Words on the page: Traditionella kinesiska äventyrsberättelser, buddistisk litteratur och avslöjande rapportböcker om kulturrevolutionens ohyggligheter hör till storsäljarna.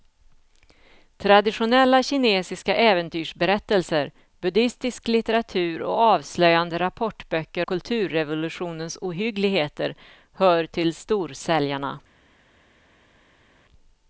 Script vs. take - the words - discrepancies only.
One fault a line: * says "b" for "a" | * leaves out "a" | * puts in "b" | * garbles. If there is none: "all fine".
* leaves out "om"